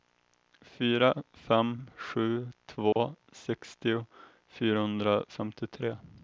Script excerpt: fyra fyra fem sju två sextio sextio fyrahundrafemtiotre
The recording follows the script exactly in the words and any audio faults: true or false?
false